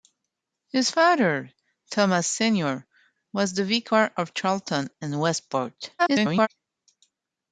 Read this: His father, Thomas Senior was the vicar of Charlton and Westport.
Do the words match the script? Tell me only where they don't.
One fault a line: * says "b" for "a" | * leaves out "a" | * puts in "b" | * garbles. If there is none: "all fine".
* garbles